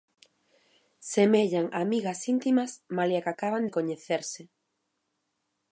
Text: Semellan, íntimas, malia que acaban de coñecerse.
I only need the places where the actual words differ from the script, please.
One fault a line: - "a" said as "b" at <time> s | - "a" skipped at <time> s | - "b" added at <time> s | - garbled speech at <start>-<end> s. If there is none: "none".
- "amigas" added at 1.8 s